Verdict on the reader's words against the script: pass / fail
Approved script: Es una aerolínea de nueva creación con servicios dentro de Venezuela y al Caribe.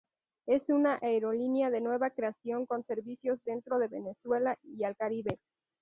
pass